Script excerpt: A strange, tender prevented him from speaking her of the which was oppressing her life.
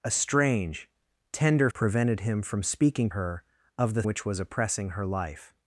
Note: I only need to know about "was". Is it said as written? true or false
true